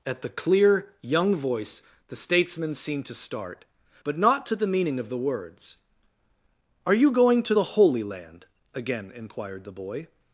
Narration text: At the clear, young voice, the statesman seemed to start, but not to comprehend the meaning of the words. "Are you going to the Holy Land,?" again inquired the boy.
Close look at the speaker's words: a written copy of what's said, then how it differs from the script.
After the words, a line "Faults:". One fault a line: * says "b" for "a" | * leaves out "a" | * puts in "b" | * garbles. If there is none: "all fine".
At the clear, young voice, the statesman seemed to start, but not to the meaning of the words. "Are you going to the Holy Land,?" again inquired the boy.
Faults:
* leaves out "comprehend"